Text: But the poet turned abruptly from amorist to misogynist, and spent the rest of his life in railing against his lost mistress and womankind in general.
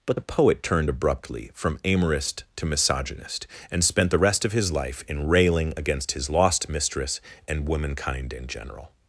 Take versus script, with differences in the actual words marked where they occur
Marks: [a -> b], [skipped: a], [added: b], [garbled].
But the poet turned abruptly from amorist to misogynist, and spent the rest of his life in railing against his lost mistress and womankind in general.